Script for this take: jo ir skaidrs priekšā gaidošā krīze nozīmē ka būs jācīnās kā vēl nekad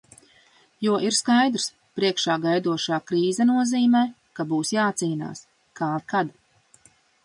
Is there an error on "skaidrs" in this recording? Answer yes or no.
no